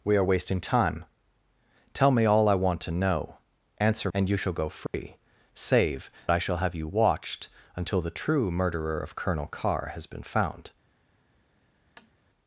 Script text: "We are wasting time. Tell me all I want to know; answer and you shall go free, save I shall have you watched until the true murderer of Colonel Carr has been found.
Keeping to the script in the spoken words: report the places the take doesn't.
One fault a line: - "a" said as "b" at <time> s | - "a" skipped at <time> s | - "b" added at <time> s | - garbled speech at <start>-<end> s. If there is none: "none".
none